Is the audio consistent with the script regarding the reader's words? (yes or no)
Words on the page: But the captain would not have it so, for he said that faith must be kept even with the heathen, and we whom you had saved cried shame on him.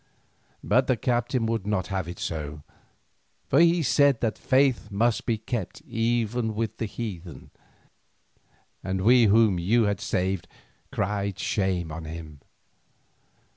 yes